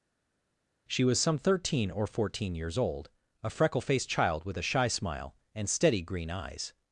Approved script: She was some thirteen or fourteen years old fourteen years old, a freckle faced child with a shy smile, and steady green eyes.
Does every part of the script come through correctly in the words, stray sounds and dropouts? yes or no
no